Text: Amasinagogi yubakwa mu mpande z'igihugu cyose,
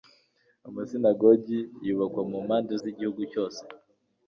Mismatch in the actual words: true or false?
false